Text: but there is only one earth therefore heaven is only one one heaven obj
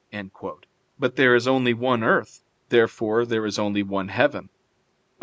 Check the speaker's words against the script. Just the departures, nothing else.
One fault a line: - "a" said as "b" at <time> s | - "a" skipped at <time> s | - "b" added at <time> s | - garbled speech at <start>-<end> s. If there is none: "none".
- "heaven" said as "there" at 3.2 s
- "one" skipped at 4.1 s